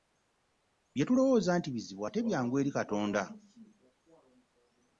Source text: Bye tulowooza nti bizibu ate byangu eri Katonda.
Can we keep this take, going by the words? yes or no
yes